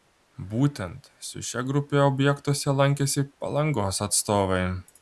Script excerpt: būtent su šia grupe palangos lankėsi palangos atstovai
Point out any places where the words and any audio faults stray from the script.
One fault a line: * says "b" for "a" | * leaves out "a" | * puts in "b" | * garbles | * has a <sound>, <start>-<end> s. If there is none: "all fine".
* says "objektuose" for "palangos"